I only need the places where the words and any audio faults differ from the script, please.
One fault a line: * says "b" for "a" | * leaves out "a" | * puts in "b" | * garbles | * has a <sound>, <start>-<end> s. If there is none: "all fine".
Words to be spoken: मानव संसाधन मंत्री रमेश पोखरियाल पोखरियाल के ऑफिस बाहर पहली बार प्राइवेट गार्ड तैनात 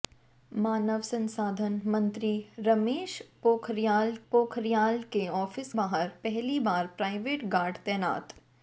all fine